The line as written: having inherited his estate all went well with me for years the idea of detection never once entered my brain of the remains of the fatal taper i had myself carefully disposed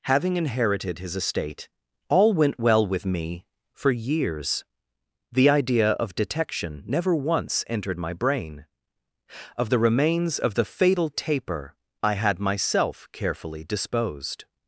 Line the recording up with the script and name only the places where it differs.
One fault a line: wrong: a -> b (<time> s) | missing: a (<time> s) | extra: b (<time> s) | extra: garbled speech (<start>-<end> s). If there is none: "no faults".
no faults